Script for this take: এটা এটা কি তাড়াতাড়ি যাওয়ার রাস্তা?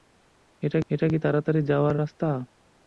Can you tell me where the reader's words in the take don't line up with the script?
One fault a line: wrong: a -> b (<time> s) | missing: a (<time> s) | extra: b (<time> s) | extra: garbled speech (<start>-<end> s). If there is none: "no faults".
no faults